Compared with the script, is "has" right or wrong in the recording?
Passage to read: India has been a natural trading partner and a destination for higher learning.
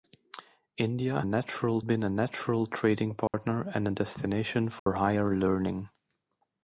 wrong